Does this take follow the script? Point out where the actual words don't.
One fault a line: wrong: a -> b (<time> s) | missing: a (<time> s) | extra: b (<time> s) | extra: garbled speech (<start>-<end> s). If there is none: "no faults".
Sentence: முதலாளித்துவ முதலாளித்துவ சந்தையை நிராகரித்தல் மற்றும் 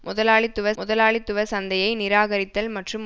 no faults